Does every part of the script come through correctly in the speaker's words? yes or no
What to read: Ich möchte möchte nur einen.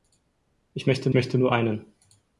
yes